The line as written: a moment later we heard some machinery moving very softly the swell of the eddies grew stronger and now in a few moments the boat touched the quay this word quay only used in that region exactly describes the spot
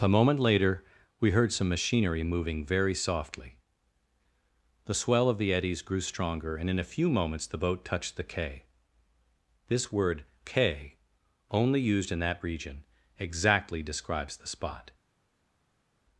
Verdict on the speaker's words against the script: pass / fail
fail